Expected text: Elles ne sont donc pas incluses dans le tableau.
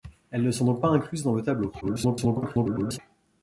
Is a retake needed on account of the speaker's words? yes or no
yes